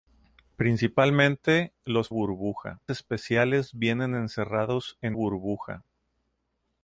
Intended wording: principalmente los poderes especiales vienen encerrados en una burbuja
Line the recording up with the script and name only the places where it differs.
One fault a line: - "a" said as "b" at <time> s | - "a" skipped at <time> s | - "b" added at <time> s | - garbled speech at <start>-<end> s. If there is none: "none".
- "poderes" said as "burbuja" at 2.1 s
- "una" skipped at 5.2 s